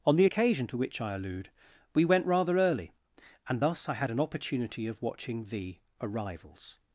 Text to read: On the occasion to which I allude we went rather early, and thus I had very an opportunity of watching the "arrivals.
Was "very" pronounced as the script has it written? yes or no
no